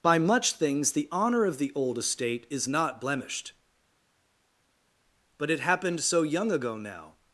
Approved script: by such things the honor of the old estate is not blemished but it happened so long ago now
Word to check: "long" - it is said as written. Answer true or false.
false